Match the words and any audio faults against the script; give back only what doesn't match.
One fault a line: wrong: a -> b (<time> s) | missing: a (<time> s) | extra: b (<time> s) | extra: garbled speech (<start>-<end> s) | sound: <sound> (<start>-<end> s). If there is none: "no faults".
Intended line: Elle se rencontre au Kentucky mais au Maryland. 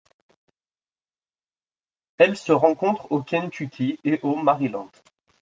wrong: mais -> et (4.0 s)